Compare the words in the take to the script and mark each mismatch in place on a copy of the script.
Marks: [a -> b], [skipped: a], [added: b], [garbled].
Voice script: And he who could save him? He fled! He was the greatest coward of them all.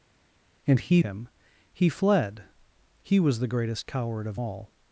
And he [skipped: who could save] him? He fled! He was the greatest coward of [skipped: them] all.